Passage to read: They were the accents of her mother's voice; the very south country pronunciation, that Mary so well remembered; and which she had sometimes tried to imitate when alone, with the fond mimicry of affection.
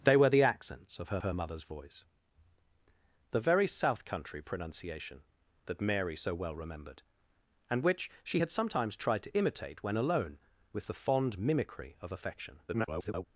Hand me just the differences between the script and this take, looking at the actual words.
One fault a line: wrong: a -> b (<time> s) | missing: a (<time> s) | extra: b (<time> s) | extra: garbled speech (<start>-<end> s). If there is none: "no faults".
extra: her (1.2 s)
extra: garbled speech (12.7-13.3 s)